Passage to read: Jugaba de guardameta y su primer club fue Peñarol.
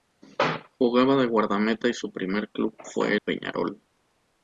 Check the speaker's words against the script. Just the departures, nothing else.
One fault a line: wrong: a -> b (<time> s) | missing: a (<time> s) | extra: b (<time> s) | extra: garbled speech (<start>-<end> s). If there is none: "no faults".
no faults